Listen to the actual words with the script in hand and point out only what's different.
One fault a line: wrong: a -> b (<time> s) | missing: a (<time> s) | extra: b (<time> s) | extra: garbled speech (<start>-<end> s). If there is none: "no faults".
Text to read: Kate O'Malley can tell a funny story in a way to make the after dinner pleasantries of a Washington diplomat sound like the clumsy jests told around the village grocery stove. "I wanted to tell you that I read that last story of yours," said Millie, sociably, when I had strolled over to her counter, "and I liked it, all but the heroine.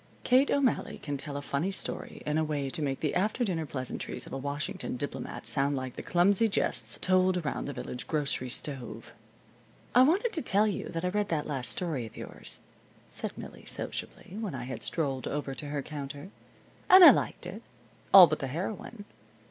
no faults